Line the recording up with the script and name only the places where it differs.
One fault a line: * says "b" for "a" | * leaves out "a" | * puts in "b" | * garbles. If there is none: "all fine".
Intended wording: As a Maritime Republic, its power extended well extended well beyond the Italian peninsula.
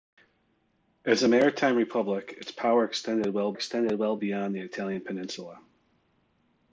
all fine